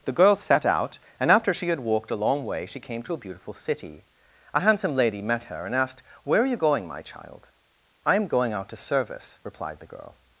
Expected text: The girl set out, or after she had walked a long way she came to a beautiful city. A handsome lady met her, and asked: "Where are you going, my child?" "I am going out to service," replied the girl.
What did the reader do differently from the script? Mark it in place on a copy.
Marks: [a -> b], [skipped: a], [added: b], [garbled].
The girl set out, [or -> and] after she had walked a long way she came to a beautiful city. A handsome lady met her, and asked: "Where are you going, my child?" "I am going out to service," replied the girl.